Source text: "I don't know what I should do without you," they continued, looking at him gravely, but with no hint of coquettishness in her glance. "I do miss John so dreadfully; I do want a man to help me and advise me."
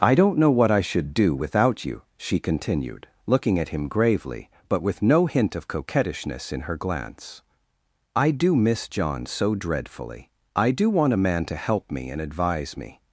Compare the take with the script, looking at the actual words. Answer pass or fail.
fail